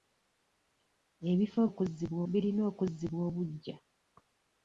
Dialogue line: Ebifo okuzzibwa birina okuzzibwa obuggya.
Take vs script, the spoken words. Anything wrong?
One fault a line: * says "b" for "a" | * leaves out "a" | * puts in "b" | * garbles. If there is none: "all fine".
all fine